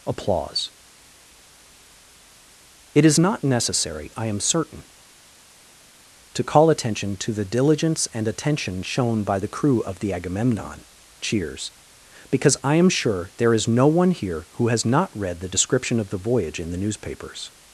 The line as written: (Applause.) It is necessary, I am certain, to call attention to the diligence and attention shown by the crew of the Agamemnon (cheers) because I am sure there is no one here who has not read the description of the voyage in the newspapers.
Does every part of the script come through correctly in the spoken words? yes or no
no